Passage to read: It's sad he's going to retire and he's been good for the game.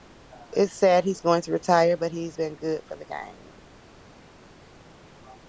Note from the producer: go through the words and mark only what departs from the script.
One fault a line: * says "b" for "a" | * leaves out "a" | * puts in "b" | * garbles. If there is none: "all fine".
* says "but" for "and"